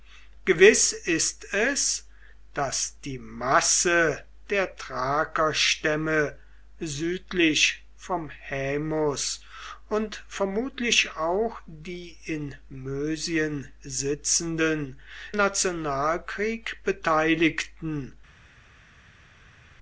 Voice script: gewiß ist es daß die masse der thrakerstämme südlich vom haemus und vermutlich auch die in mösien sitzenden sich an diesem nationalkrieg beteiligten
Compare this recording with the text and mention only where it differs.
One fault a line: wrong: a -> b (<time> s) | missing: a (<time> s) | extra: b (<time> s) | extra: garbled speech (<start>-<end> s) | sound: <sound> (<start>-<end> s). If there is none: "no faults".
missing: sich an diesem (15.0 s)